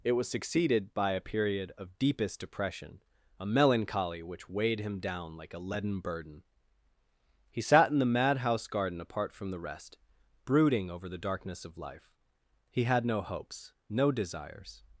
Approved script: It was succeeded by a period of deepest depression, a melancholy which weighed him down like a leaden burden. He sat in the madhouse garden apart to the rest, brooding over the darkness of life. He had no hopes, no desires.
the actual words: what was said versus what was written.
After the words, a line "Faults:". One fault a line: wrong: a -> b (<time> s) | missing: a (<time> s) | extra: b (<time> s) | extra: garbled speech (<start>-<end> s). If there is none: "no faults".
It was succeeded by a period of deepest depression, a melancholy which weighed him down like a leaden burden. He sat in the madhouse garden apart from the rest, brooding over the darkness of life. He had no hopes, no desires.
Faults:
wrong: to -> from (9.3 s)